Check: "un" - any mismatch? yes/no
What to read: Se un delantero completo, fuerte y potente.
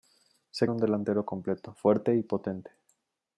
no